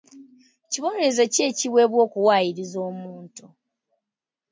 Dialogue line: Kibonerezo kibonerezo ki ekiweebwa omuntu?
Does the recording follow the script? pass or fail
fail